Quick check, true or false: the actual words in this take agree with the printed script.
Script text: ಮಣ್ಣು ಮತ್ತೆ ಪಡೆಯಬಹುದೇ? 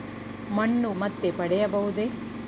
true